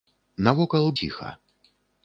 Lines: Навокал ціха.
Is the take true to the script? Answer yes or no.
yes